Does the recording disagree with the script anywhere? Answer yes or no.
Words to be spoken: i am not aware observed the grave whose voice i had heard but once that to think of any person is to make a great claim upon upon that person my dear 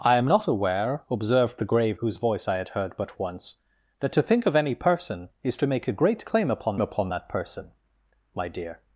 no